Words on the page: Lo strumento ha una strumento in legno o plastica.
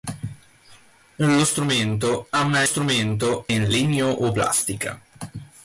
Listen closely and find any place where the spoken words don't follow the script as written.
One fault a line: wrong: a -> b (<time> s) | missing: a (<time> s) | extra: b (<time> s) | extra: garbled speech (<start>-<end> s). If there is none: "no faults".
no faults